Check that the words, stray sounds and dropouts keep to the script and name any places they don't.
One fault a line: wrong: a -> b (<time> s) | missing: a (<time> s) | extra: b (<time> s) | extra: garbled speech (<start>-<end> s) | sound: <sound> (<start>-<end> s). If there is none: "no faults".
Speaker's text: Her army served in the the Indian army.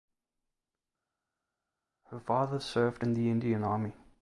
wrong: army -> father (2.2 s)
missing: the (3.3 s)